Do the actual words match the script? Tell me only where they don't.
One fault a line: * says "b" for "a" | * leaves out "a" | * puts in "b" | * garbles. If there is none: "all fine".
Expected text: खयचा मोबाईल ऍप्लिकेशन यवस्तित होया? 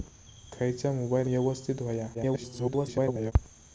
* leaves out "ऍप्लिकेशन"
* garbles